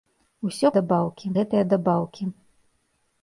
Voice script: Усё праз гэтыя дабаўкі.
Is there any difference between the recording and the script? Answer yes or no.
yes